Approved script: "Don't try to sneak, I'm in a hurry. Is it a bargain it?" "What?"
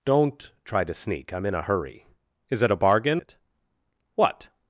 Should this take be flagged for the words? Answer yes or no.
no